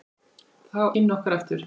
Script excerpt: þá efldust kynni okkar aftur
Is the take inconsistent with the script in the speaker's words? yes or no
yes